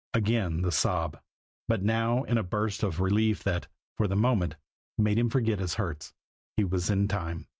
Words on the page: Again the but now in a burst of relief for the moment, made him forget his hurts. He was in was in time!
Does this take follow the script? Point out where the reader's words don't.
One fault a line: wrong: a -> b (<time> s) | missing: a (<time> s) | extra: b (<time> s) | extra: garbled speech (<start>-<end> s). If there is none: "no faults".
extra: sob (0.7 s)
extra: that (3.4 s)
missing: was in (7.1 s)